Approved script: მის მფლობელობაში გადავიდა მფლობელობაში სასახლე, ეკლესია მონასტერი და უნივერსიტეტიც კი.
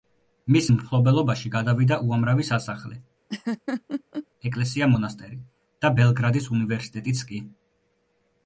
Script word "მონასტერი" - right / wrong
right